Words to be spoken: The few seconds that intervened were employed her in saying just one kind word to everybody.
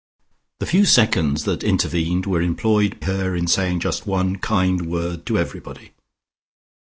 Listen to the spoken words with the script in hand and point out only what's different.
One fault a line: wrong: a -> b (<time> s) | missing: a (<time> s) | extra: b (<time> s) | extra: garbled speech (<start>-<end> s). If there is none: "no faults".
no faults